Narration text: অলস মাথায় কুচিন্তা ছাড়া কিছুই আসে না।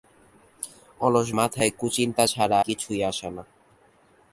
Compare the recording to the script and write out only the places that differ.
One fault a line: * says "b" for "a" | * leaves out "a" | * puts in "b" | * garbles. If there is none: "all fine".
all fine